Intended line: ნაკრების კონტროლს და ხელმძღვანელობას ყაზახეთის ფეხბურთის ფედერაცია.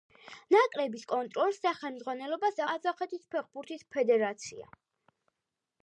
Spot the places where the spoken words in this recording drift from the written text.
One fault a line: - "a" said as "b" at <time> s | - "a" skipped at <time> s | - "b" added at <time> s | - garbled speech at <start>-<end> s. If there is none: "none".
none